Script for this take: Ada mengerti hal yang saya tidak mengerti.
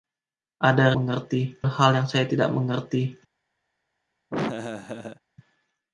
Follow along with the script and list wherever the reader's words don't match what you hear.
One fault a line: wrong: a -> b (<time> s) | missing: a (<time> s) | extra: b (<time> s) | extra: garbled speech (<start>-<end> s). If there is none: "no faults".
no faults